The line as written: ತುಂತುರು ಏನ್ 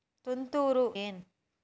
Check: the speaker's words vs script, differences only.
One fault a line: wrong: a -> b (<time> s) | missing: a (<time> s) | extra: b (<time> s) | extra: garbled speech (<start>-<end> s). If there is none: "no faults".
no faults